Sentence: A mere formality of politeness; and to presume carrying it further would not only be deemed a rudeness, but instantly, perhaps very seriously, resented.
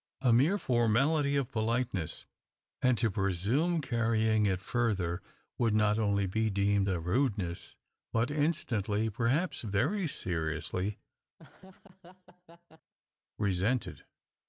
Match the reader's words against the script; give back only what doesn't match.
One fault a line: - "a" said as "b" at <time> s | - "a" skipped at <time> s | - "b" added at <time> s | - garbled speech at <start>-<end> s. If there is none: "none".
none